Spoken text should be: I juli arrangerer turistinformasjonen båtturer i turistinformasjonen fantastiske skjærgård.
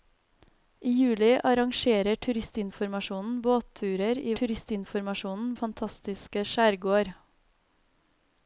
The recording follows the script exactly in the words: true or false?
true